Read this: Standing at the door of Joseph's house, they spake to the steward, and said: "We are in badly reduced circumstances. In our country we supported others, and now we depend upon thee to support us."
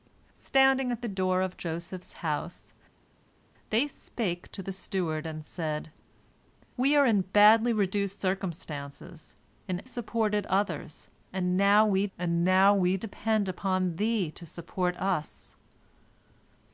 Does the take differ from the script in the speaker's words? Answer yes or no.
yes